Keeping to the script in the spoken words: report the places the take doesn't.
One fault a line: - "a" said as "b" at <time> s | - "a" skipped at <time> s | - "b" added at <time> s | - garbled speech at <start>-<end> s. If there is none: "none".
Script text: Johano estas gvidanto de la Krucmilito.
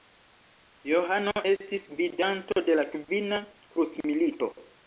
- "estas" said as "estis" at 1.5 s
- "Kvina" added at 3.0 s